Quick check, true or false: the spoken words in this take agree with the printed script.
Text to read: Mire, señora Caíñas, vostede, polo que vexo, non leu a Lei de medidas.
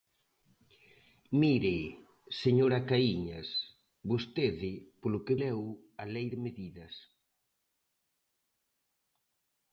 false